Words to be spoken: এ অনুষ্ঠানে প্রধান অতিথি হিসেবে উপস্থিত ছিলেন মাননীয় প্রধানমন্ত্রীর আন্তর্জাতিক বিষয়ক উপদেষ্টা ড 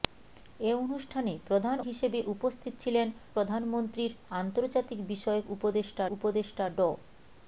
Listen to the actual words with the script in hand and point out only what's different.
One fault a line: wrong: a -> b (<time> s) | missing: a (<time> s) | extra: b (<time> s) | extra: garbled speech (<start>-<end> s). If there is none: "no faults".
missing: অতিথি (1.8 s)
missing: মাননীয় (3.1 s)
extra: উপদেষ্টা (6.2 s)